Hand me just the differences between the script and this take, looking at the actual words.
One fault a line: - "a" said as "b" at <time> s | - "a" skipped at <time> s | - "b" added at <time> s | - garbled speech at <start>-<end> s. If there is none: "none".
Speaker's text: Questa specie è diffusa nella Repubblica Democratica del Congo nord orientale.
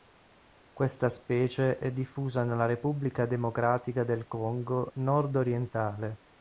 none